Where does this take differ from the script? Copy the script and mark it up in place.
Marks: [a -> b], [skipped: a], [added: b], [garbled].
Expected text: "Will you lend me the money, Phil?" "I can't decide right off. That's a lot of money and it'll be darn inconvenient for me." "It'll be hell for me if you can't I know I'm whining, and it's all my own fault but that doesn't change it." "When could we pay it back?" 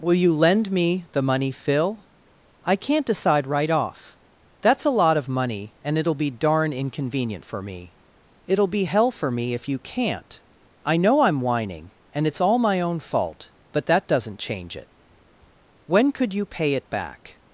"Will you lend me the money, Phil?" "I can't decide right off. That's a lot of money and it'll be darn inconvenient for me." "It'll be hell for me if you can't I know I'm whining, and it's all my own fault but that doesn't change it." "When could [we -> you] pay it back?"